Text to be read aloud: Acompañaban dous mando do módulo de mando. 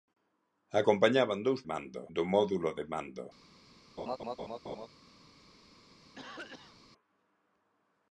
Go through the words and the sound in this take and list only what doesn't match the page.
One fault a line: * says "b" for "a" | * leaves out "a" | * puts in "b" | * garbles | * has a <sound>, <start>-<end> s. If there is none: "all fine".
* has a laugh, 4.0-4.9 s
* has a cough, 6.2-6.8 s